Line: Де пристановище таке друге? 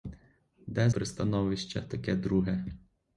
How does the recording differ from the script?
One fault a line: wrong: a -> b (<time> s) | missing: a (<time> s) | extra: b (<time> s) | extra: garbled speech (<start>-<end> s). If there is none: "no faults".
no faults